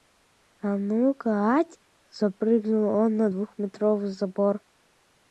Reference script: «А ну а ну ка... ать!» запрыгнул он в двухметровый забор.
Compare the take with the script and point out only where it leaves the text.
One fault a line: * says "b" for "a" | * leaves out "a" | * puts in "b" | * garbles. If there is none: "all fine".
* leaves out "а ну"
* says "на" for "в"